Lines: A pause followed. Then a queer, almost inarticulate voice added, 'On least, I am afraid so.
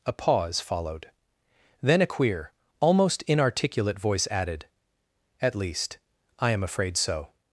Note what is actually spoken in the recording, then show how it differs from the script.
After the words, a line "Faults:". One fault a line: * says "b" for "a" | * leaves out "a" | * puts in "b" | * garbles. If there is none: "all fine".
A pause followed. Then a queer, almost inarticulate voice added, 'At least, I am afraid so.
Faults:
* says "At" for "On"